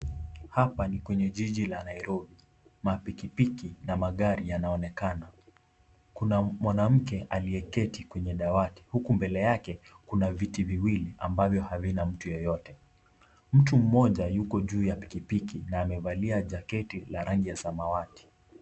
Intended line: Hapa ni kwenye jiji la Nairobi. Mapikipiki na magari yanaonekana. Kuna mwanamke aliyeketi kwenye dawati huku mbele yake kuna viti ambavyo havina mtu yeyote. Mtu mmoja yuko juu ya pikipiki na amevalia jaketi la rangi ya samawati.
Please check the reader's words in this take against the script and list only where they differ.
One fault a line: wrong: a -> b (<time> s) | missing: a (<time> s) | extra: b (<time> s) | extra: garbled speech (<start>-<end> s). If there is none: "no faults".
extra: viwili (10.6 s)